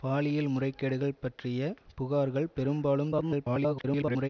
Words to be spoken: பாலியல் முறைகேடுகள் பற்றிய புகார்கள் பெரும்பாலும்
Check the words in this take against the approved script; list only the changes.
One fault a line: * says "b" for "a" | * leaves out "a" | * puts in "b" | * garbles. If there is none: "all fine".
* garbles